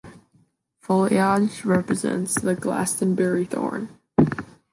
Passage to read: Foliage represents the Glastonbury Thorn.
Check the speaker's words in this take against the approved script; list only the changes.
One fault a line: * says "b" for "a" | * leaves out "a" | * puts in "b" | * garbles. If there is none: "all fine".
all fine